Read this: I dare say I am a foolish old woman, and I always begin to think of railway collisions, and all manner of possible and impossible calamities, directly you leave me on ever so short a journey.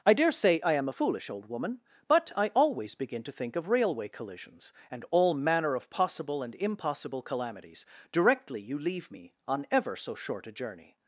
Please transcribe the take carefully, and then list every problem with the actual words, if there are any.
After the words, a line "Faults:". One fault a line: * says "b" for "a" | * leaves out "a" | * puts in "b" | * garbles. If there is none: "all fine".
I dare say I am a foolish old woman, but I always begin to think of railway collisions, and all manner of possible and impossible calamities, directly you leave me on ever so short a journey.
Faults:
* says "but" for "and"